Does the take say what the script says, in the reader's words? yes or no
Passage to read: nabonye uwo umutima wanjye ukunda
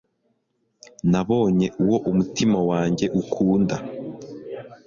yes